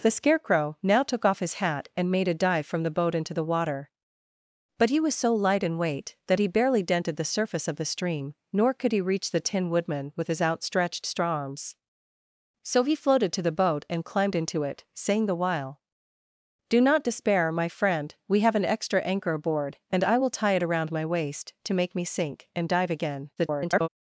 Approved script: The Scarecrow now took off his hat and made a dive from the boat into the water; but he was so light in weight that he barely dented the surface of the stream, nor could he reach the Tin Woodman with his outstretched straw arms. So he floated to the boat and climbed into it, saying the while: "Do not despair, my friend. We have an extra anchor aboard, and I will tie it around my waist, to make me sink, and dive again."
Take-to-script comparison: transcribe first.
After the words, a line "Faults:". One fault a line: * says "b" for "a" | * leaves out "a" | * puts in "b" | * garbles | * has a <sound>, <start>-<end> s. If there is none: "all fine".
The Scarecrow now took off his hat and made a dive from the boat into the water; but he was so light in weight that he barely dented the surface of the stream, nor could he reach the Tin Woodman with his outstretched straw arms. So he floated to the boat and climbed into it, saying the while: "Do not despair, my friend. We have an extra anchor aboard, and I will tie it around my waist, to make me sink, and dive again." [garbled]
Faults:
* garbles